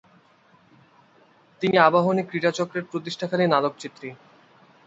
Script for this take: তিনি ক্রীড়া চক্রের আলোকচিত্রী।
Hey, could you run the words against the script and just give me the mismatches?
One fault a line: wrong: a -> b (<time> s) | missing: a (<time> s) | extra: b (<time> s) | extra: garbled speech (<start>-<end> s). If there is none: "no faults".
extra: আবাহনী (1.8 s)
extra: প্রতিষ্ঠাকালীন (2.9 s)